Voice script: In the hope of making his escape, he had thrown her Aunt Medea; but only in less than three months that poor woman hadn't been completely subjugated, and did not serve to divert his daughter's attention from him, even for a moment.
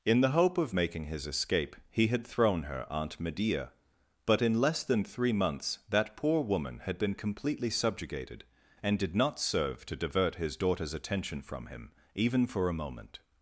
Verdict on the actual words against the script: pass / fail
fail